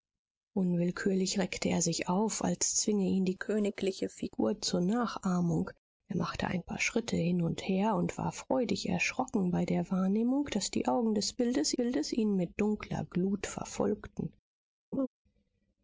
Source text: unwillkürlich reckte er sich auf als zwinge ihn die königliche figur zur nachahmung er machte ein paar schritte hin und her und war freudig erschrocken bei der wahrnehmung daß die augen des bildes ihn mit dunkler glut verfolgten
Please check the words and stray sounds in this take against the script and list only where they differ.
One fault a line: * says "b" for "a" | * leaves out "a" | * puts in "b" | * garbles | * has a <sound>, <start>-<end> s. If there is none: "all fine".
* puts in "bildes"
* has a laugh, 14.9-15.1 s